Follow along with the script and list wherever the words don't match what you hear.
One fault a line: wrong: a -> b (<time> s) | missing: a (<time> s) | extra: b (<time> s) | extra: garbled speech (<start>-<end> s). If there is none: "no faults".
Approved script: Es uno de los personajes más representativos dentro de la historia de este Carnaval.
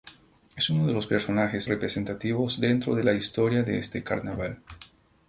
missing: más (1.7 s)